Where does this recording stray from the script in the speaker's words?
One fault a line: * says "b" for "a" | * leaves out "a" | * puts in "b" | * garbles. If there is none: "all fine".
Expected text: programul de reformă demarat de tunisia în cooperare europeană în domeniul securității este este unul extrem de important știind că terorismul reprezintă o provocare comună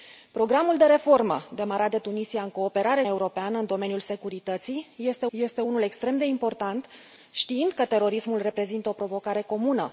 all fine